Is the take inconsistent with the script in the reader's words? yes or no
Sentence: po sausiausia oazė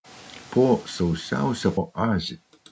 no